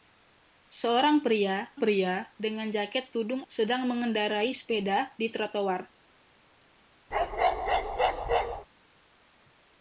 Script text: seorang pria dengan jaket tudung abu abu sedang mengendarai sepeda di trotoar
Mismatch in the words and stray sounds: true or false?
true